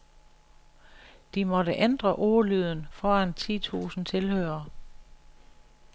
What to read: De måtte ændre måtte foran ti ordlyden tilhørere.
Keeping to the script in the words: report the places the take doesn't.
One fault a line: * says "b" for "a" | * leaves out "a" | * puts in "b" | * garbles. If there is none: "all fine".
* says "ordlyden" for "måtte"
* says "tusind" for "ordlyden"